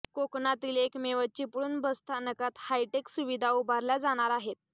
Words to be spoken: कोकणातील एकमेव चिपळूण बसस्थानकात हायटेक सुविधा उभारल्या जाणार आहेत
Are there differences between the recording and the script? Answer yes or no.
no